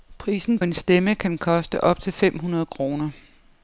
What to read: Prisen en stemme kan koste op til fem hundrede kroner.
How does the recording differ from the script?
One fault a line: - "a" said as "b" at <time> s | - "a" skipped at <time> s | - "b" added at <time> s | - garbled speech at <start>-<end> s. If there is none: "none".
none